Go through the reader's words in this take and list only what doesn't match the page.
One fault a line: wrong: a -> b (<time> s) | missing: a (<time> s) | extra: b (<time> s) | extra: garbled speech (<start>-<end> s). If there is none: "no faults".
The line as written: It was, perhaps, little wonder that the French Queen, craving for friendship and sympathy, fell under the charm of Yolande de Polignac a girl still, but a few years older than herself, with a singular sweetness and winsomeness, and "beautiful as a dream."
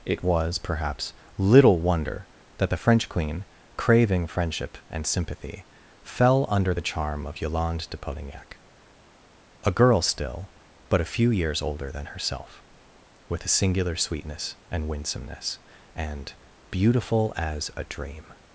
missing: for (4.3 s)